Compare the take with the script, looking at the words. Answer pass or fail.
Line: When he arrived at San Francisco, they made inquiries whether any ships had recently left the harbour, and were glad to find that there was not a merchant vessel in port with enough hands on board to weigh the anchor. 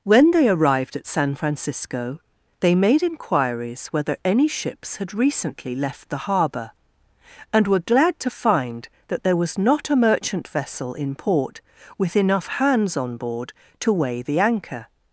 fail